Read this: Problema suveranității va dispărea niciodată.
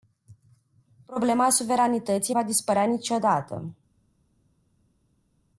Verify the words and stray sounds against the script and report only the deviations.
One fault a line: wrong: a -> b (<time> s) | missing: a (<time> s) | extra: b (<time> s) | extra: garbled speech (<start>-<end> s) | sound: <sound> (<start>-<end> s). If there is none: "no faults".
no faults